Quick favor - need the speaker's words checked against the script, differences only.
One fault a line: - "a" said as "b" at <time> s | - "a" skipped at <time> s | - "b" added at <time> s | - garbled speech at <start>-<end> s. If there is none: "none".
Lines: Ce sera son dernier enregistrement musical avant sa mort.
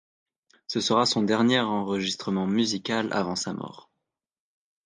none